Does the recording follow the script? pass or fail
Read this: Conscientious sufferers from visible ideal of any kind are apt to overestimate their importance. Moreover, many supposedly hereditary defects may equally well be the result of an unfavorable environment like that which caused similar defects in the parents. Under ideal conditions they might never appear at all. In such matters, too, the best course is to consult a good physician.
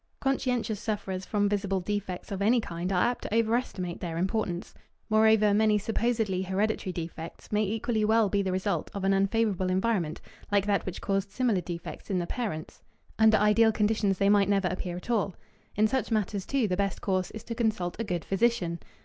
fail